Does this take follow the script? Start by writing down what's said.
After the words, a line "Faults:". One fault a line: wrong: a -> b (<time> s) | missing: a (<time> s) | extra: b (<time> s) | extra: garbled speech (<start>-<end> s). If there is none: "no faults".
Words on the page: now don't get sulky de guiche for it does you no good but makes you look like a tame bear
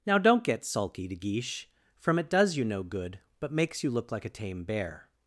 now don't get sulky de guiche from it does you no good but makes you look like a tame bear
Faults:
wrong: for -> from (2.0 s)